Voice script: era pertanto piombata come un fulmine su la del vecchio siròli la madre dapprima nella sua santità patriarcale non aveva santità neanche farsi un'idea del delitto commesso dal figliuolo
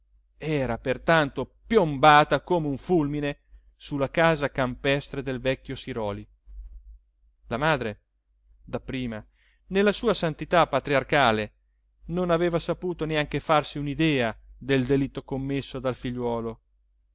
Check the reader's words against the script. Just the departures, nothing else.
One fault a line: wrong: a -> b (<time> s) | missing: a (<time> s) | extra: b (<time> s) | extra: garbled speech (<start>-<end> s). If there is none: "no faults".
extra: casa campestre (4.1 s)
wrong: santità -> saputo (12.6 s)